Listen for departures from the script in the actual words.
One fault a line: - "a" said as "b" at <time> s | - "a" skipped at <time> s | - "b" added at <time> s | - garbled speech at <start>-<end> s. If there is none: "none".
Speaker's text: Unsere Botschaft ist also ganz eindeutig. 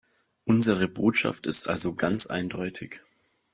none